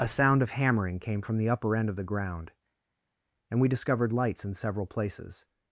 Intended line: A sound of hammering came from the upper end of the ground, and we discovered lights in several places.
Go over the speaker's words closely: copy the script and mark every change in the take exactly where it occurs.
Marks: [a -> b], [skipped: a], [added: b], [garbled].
A sound of hammering came from the upper end of the ground, and we discovered lights in several places.